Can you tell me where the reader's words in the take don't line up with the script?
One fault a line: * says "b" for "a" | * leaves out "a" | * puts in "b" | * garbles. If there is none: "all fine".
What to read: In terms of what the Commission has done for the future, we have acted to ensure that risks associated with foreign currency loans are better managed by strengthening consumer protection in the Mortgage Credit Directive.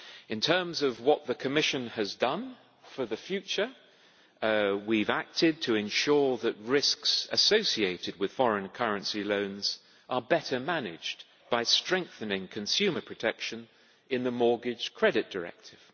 all fine